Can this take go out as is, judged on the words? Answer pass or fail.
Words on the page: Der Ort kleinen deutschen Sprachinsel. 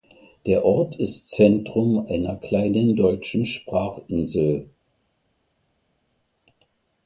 fail